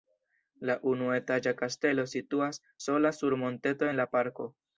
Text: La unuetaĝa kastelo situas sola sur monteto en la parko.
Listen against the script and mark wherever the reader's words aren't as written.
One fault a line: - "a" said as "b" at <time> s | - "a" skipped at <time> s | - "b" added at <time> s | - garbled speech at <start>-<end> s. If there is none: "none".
none